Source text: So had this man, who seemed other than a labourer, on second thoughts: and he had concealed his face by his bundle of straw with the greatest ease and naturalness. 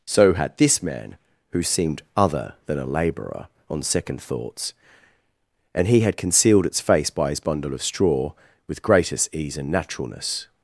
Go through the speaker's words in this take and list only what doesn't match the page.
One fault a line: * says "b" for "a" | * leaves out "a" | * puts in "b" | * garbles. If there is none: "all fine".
* says "its" for "his"
* leaves out "the"